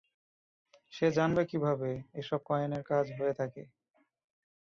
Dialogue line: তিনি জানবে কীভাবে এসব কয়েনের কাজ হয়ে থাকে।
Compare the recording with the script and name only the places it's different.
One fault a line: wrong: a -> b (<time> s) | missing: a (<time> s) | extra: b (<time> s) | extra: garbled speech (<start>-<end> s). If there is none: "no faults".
wrong: তিনি -> সে (0.9 s)